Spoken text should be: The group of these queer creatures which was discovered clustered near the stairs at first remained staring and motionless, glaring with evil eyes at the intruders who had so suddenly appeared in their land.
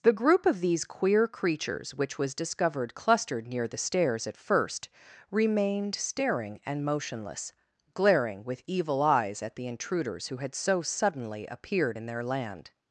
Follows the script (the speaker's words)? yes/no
yes